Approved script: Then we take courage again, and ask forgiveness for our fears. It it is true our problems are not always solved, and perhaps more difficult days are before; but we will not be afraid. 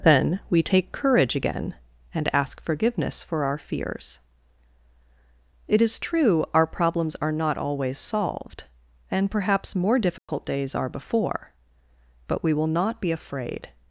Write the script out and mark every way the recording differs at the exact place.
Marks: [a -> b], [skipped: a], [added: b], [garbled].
Then we take courage again, and ask forgiveness for our fears. It [skipped: it] is true our problems are not always solved, and perhaps more difficult days are before; but we will not be afraid.